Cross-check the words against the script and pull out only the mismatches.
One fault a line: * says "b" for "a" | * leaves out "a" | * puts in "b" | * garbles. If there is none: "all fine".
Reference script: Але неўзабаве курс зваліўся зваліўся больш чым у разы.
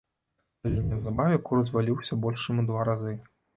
* leaves out "зваліўся"
* puts in "два"